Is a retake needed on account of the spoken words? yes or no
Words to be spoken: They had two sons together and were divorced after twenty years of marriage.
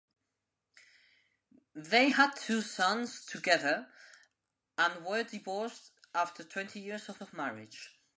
yes